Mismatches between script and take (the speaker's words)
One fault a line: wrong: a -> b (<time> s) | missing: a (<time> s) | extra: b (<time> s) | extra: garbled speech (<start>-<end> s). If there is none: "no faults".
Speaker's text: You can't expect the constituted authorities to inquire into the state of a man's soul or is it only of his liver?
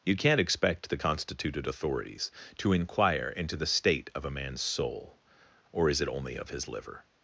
no faults